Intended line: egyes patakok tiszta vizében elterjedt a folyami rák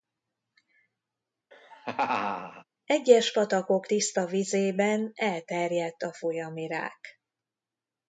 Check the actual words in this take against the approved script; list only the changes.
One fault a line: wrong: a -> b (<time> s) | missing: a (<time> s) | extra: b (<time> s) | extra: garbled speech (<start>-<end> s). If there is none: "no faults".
no faults